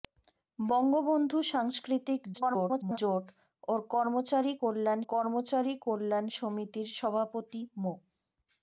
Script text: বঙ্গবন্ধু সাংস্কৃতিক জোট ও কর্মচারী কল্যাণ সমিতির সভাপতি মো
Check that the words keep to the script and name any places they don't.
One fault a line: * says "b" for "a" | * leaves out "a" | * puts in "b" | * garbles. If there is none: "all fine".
* garbles
* puts in "কর্মচারী কল্যাণ"